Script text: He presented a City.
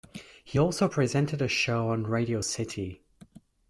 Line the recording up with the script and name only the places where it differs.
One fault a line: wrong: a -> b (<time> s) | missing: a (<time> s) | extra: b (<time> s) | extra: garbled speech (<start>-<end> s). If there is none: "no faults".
extra: also (0.6 s)
extra: show on Radio (1.5 s)